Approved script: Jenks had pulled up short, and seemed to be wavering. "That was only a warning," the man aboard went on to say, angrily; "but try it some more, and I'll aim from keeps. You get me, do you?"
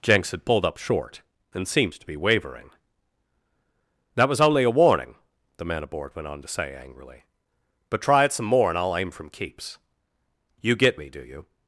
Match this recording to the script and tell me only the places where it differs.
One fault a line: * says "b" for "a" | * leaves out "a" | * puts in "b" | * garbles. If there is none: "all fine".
all fine